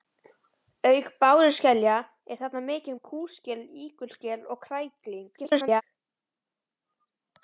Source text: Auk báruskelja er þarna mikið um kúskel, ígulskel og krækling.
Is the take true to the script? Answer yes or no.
no